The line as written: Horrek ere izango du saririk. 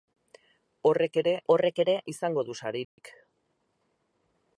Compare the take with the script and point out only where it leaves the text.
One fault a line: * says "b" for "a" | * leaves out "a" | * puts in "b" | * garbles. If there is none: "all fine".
* puts in "horrek ere"